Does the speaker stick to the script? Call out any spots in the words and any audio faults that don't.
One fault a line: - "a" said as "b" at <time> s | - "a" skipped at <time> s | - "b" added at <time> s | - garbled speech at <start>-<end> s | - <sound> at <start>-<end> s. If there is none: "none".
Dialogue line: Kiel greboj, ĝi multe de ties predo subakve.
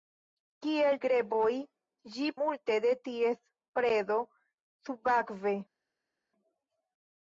none